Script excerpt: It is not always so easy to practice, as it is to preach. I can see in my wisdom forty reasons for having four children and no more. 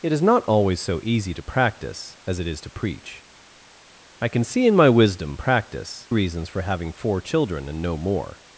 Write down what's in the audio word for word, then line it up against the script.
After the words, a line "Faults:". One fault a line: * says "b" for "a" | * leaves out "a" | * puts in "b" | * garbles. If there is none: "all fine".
It is not always so easy to practice, as it is to preach. I can see in my wisdom practice reasons for having four children and no more.
Faults:
* says "practice" for "forty"